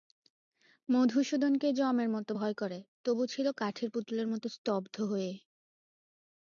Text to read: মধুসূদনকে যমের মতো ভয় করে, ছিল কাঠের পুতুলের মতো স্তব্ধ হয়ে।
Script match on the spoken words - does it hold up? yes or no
no